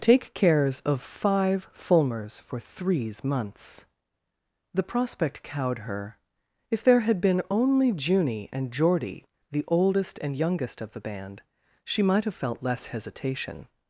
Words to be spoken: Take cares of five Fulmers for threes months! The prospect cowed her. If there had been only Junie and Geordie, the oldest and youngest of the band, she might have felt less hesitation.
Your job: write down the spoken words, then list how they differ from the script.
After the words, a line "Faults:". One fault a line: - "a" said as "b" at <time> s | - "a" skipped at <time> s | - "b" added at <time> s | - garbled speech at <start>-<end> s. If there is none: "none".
Take cares of five Fulmers for threes months! The prospect cowed her. If there had been only Junie and Geordie, the oldest and youngest of the band, she might have felt less hesitation.
Faults:
none